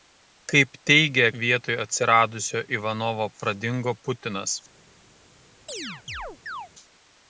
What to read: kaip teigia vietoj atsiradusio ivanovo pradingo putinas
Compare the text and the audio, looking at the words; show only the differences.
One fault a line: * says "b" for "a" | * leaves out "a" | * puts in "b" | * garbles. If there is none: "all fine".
all fine